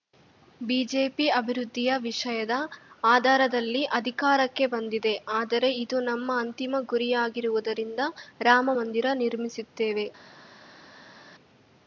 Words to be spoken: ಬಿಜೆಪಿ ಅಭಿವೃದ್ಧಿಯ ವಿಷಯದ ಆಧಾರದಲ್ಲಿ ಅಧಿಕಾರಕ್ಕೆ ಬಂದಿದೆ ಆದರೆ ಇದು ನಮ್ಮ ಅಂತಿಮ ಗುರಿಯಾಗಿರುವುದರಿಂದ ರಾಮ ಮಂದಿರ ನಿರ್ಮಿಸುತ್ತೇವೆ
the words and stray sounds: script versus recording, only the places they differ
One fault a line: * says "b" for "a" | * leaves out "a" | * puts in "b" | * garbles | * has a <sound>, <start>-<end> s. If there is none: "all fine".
all fine